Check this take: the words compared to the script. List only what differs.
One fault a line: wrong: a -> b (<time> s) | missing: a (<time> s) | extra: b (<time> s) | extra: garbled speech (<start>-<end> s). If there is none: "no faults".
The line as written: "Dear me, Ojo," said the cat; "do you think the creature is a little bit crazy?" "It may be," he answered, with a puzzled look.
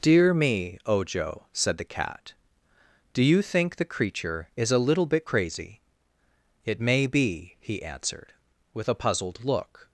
no faults